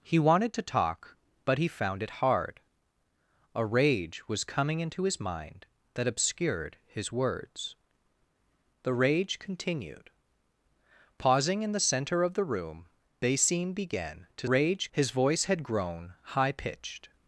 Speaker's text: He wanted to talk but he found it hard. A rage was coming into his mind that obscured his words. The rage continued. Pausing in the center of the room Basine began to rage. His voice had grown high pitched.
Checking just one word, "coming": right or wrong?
right